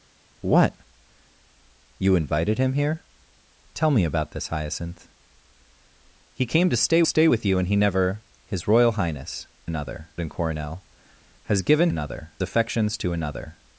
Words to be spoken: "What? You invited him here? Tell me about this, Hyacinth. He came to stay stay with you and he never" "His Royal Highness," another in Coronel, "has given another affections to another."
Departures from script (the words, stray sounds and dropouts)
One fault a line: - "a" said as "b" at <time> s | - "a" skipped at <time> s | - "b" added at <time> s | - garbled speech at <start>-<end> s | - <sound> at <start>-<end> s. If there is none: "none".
none